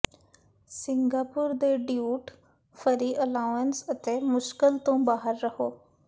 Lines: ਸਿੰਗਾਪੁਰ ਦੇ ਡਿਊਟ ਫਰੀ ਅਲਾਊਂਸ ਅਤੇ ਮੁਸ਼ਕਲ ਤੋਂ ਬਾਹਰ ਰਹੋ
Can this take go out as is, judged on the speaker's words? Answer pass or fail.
pass